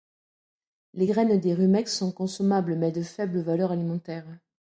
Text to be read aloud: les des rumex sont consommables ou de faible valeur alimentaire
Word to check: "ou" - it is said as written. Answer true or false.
false